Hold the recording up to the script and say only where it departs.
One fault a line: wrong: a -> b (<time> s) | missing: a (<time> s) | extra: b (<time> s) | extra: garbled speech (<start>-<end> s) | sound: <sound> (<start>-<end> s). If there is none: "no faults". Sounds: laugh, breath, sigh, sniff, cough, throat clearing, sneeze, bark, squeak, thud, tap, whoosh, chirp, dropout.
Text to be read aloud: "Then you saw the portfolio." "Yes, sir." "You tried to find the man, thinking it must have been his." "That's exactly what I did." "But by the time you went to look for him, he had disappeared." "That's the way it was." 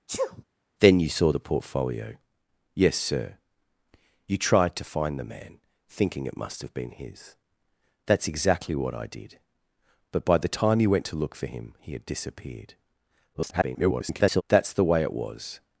sound: sneeze (0.1-0.4 s)
extra: garbled speech (13.3-14.4 s)